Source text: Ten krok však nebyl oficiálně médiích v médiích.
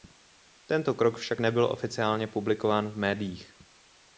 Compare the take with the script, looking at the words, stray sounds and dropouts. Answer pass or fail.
fail